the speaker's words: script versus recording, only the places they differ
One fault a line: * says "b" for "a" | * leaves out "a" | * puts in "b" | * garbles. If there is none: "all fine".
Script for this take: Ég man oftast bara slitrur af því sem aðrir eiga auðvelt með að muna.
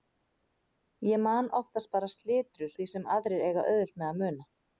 * leaves out "af"